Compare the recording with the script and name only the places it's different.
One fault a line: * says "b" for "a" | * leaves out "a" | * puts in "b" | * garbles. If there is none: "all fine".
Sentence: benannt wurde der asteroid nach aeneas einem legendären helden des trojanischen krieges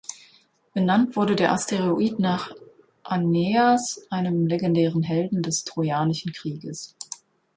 all fine